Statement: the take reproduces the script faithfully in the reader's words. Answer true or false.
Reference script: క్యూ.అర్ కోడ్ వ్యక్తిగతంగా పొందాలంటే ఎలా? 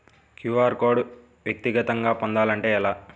true